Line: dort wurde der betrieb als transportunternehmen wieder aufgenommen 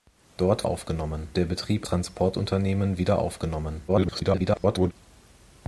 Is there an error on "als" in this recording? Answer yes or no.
yes